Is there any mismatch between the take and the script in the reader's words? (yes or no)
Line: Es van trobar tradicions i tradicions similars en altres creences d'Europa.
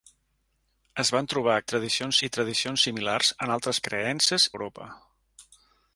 no